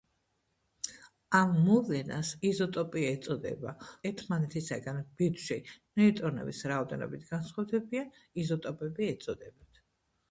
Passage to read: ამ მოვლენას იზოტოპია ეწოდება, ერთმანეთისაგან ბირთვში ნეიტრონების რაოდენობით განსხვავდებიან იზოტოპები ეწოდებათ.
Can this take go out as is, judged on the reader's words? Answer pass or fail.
pass